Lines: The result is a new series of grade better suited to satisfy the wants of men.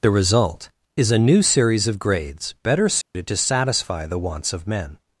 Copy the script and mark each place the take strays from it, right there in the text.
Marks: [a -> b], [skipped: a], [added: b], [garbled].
The result is a new series of [grade -> grades] better suited to satisfy the wants of men.